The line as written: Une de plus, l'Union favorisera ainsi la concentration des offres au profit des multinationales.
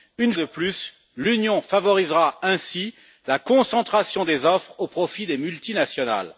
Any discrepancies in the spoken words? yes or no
no